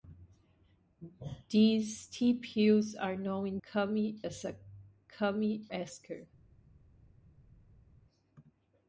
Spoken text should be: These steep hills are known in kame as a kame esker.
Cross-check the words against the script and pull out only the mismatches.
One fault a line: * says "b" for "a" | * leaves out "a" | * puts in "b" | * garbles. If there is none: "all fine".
all fine